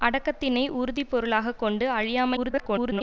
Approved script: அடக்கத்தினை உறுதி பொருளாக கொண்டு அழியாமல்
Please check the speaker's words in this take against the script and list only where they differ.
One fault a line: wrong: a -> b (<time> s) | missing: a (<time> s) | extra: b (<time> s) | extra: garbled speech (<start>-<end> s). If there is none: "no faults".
extra: garbled speech (2.4-3.0 s)